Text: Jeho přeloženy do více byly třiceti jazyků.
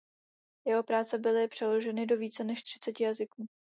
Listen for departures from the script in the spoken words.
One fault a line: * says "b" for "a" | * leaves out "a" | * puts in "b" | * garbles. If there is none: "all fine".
* puts in "práce byly"
* says "než" for "byly"